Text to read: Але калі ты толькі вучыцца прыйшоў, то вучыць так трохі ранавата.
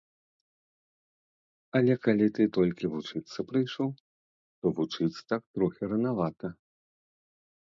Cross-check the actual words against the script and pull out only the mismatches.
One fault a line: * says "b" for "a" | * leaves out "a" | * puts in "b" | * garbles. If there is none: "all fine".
all fine